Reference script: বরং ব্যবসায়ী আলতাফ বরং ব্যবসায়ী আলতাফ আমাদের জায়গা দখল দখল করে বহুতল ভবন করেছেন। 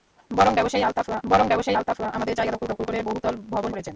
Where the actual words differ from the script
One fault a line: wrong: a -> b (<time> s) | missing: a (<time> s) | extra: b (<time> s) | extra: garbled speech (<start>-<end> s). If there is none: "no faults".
no faults